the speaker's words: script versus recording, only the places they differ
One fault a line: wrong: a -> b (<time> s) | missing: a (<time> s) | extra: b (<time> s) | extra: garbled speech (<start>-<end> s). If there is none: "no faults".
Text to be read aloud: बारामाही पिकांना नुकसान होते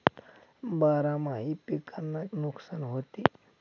no faults